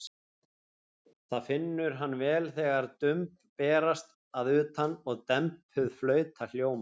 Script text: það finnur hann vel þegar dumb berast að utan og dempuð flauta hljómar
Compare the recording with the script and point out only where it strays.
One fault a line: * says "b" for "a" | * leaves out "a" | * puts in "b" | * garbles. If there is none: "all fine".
all fine